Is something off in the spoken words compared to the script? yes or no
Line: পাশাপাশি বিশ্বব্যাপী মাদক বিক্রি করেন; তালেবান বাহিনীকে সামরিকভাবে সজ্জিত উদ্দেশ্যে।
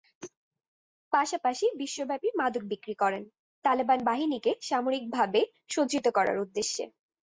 yes